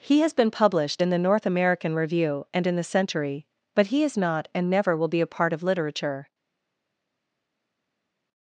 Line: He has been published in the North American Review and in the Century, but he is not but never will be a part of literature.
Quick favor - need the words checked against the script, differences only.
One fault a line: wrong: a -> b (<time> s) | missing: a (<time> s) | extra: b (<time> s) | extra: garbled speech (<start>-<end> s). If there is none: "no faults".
wrong: but -> and (4.5 s)